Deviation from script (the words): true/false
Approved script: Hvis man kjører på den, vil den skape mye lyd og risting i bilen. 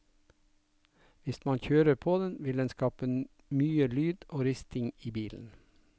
false